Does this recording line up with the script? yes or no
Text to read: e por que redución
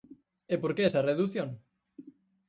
no